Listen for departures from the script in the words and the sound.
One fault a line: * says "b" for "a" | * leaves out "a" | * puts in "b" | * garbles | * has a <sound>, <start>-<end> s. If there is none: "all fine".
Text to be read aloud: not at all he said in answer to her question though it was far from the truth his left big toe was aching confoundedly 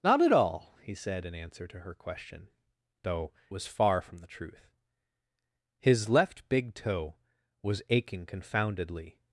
* leaves out "it"